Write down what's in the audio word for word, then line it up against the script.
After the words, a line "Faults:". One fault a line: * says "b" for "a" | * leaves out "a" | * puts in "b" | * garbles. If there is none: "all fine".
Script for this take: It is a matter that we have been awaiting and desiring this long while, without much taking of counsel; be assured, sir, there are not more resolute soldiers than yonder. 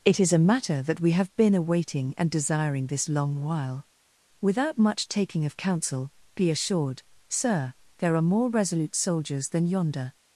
It is a matter that we have been awaiting and desiring this long while, without much taking of counsel; be assured, sir, there are more resolute soldiers than yonder.
Faults:
* leaves out "not"